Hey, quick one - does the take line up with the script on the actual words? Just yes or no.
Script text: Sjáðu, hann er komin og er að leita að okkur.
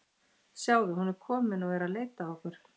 no